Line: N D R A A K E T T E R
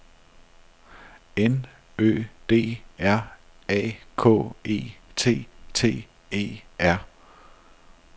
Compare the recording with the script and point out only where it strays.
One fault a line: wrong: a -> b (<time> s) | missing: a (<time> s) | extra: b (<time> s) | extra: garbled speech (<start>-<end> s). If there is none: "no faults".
extra: Ø (2.0 s)
missing: A (4.0 s)